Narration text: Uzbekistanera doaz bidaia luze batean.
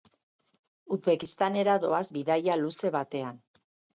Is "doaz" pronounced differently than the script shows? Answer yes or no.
no